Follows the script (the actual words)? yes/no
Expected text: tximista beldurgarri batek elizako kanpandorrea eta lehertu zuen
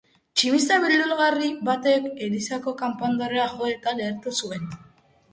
no